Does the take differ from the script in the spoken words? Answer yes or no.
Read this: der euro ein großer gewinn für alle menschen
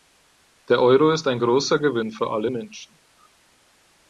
yes